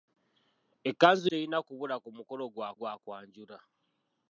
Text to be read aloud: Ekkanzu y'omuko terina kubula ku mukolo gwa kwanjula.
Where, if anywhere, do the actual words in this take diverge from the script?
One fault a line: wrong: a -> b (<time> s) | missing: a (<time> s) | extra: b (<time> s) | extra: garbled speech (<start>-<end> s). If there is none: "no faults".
missing: y'omuko (1.3 s)
extra: gwa (2.8 s)